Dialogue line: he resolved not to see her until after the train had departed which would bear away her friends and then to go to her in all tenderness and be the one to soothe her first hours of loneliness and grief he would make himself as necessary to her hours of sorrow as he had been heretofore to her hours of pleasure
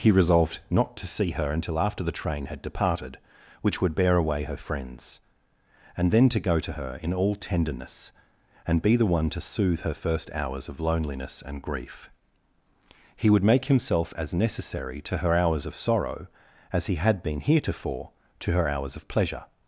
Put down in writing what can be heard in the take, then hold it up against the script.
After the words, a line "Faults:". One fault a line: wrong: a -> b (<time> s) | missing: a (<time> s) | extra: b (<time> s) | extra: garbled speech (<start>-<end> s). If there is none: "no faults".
he resolved not to see her until after the train had departed which would bear away her friends and then to go to her in all tenderness and be the one to soothe her first hours of loneliness and grief he would make himself as necessary to her hours of sorrow as he had been heretofore to her hours of pleasure
Faults:
no faults